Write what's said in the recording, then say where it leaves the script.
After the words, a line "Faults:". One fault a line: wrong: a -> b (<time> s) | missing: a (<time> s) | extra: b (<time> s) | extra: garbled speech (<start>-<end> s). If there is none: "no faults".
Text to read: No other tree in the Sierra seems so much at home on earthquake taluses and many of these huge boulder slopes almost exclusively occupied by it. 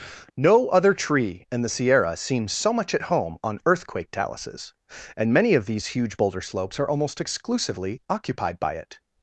No other tree in the Sierra seems so much at home on earthquake taluses and many of these huge boulder slopes are almost exclusively occupied by it.
Faults:
extra: are (6.8 s)